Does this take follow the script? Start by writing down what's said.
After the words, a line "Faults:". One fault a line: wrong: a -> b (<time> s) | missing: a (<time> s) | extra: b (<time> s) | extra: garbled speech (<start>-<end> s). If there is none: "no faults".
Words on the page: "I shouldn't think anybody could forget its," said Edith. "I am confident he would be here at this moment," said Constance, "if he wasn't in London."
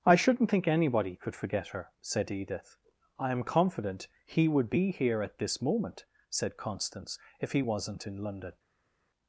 "I shouldn't think anybody could forget her," said Edith. "I am confident he would be here at this moment," said Constance, "if he wasn't in London."
Faults:
wrong: its -> her (1.7 s)